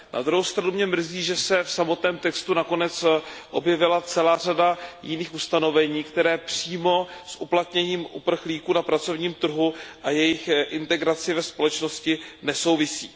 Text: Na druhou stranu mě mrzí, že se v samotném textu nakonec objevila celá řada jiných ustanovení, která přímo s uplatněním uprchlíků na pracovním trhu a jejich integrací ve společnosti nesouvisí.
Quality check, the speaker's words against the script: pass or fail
pass